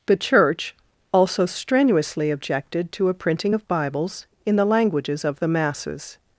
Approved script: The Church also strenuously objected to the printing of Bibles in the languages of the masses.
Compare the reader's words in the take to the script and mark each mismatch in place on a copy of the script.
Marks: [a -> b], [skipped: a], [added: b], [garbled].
The Church also strenuously objected to [the -> a] printing of Bibles in the languages of the masses.